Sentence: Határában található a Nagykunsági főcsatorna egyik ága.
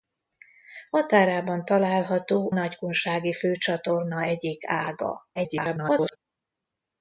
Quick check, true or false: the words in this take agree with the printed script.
false